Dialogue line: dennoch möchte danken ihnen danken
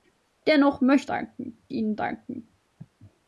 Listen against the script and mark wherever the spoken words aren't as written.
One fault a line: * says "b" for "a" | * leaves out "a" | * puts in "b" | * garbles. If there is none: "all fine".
all fine